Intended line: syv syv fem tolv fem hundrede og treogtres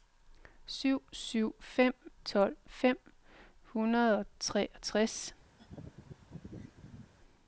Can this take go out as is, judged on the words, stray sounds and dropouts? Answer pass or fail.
fail